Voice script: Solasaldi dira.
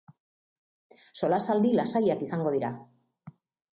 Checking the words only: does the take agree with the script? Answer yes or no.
no